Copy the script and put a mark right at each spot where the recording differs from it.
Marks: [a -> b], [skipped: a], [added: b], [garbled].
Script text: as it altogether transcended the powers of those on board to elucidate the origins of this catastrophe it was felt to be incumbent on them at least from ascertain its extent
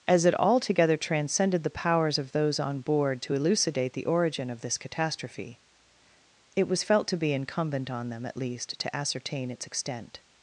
as it altogether transcended the powers of those on board to elucidate the [origins -> origin] of this catastrophe it was felt to be incumbent on them at least [from -> to] ascertain its extent